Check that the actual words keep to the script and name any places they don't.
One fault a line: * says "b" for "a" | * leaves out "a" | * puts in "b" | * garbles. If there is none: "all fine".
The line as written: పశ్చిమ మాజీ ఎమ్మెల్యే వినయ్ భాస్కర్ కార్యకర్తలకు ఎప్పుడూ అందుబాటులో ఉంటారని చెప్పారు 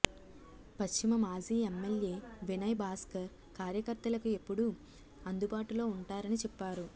all fine